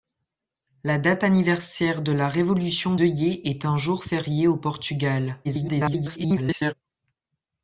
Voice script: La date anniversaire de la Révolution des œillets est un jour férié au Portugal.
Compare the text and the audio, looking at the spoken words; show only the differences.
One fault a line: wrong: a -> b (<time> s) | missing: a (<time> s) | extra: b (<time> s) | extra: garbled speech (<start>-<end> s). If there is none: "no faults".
missing: des (3.0 s)
extra: garbled speech (5.4-6.7 s)